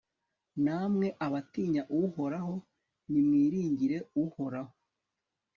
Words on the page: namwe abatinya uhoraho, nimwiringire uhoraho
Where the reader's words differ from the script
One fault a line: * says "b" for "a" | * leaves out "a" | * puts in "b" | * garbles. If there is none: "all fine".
all fine